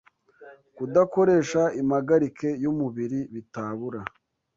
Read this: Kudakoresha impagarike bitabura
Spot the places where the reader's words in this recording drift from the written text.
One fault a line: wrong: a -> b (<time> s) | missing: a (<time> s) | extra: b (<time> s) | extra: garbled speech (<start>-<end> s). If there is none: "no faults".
extra: y'umubiri (2.6 s)